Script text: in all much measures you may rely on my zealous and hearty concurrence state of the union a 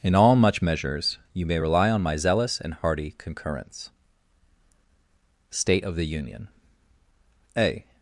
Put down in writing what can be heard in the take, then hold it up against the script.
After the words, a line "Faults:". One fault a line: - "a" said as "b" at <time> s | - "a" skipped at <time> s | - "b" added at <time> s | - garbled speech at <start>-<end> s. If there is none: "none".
in all much measures you may rely on my zealous and hearty concurrence state of the union a
Faults:
none